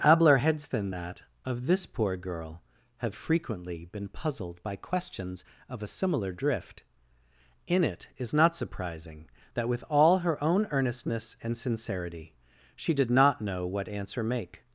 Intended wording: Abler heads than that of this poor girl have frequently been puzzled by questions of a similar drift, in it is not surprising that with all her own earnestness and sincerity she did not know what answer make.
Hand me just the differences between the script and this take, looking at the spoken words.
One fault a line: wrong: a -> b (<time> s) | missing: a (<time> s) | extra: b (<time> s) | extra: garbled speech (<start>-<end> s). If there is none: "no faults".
no faults